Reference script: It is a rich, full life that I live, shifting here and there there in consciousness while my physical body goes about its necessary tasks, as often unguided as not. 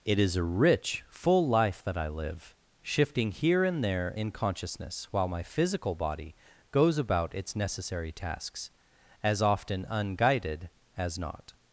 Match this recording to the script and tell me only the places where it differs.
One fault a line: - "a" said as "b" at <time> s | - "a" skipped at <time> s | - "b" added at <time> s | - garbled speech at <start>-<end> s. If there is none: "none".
- "there" skipped at 4.2 s